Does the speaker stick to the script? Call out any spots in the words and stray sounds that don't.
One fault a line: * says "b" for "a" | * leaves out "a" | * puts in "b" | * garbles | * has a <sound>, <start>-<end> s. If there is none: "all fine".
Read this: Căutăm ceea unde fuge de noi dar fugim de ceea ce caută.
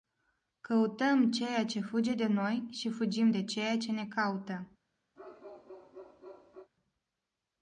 * says "ce" for "unde"
* says "și" for "dar"
* puts in "ne"
* has a bark, 5.2-6.7 s